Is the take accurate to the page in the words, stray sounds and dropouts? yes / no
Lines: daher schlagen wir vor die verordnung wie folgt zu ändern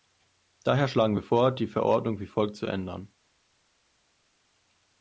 yes